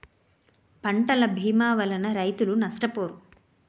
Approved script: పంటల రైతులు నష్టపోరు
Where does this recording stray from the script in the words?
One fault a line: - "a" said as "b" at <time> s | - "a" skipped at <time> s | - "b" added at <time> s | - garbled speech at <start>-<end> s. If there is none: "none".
- "భీమా వలన" added at 1.4 s